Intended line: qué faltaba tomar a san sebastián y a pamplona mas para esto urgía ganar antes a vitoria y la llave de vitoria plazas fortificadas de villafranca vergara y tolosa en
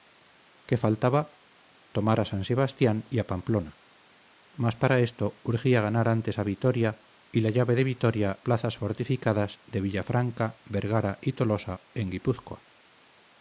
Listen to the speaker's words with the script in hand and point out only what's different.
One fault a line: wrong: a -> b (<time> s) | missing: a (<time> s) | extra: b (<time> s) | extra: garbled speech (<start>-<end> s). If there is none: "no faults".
no faults